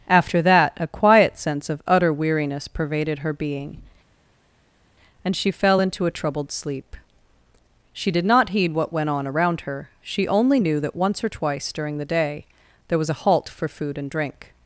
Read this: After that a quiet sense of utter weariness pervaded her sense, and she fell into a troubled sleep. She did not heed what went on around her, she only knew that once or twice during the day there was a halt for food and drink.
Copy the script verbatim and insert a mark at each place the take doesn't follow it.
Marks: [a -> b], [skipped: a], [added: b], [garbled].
After that a quiet sense of utter weariness pervaded her [sense, -> being] and she fell into a troubled sleep. She did not heed what went on around her, she only knew that once or twice during the day there was a halt for food and drink.